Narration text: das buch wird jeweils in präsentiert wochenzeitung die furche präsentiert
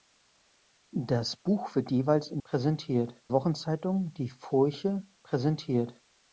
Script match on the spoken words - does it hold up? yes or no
yes